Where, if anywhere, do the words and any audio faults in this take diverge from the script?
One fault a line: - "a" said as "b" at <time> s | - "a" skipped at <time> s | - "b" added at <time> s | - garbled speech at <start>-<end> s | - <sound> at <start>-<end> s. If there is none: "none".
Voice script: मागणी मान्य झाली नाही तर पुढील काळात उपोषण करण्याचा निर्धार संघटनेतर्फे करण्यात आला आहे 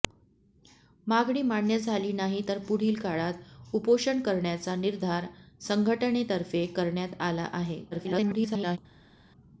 - garbled speech at 7.9-8.8 s